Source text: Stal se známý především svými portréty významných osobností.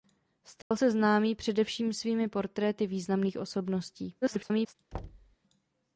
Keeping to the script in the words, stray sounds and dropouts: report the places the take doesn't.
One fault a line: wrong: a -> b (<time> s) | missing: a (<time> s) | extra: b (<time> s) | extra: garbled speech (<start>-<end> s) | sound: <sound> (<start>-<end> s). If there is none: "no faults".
sound: dropout (0.6-0.7 s)
extra: garbled speech (4.2-4.8 s)
sound: thud (4.9-5.4 s)